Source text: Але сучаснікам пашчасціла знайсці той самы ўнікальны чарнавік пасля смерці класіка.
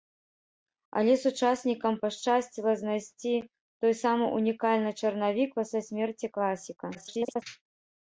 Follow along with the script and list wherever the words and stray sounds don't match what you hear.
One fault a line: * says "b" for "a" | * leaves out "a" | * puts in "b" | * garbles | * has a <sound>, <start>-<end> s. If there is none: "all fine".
* garbles